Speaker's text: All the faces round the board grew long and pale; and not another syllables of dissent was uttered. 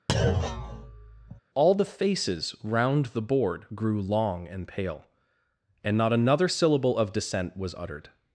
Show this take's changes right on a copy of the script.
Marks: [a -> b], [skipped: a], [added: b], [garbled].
All the faces round the board grew long and pale; and not another [syllables -> syllable] of dissent was uttered.